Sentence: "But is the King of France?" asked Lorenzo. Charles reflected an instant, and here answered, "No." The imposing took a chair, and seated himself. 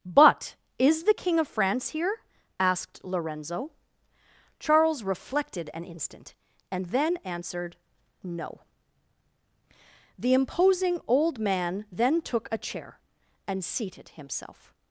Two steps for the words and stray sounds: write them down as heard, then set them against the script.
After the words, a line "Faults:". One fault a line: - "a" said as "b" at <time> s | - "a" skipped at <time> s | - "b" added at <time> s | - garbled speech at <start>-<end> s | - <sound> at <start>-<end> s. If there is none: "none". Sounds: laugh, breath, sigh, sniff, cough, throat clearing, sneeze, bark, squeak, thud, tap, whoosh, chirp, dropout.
"But is the King of France here?" asked Lorenzo. Charles reflected an instant, and then answered, "No." The imposing old man then took a chair, and seated himself.
Faults:
- "here" added at 1.9 s
- "here" said as "then" at 6.9 s
- "old man then" added at 11.1 s